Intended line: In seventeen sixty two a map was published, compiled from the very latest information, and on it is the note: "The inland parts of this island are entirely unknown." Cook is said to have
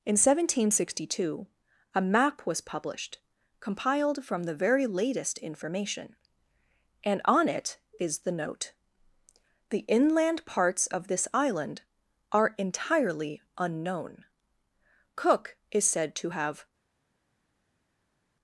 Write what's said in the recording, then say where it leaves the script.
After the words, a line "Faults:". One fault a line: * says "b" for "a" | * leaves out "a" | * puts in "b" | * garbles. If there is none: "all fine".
In seventeen sixty two a map was published, compiled from the very latest information, and on it is the note: "The inland parts of this island are entirely unknown." Cook is said to have
Faults:
all fine